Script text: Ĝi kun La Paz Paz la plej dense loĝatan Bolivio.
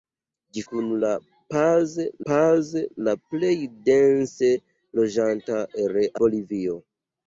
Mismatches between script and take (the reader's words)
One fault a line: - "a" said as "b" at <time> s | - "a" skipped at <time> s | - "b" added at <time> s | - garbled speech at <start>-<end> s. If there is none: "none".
none